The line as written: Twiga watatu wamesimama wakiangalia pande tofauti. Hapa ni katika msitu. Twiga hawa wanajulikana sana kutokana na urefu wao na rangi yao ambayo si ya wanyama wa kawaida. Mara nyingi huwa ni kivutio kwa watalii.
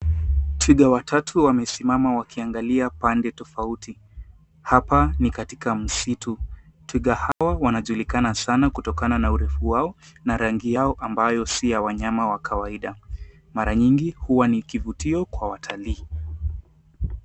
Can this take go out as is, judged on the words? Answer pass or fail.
pass